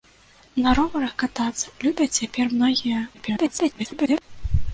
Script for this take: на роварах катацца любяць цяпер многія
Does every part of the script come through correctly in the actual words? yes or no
no